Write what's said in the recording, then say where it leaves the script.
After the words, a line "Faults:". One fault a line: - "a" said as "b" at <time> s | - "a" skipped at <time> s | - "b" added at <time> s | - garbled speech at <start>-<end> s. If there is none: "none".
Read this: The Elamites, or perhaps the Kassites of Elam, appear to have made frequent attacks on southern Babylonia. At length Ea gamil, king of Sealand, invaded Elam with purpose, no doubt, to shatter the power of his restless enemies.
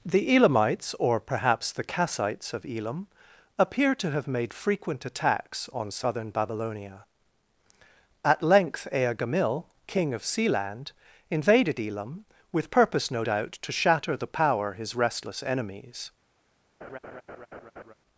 The Elamites, or perhaps the Kassites of Elam, appear to have made frequent attacks on southern Babylonia. At length Ea gamil, king of Sealand, invaded Elam with purpose, no doubt, to shatter the power his restless enemies.
Faults:
- "of" skipped at 14.7 s